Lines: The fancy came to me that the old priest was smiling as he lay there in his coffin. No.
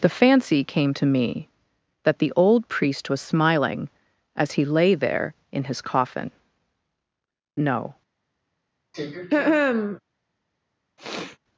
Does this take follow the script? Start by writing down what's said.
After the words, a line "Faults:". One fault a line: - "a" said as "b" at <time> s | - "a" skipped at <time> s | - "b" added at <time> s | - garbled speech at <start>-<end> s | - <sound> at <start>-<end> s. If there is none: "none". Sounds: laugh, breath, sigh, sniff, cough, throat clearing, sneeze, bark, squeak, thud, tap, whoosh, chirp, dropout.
The fancy came to me that the old priest was smiling as he lay there in his coffin. No.
Faults:
- throat clearing at 8.9-10.0 s
- sniff at 11.0-11.4 s